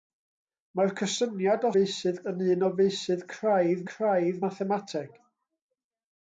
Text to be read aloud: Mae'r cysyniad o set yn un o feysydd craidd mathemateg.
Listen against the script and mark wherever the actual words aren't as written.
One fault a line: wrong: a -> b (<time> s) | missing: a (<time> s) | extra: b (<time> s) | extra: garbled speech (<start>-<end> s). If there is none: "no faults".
wrong: set -> feysydd (1.8 s)
extra: craidd (3.9 s)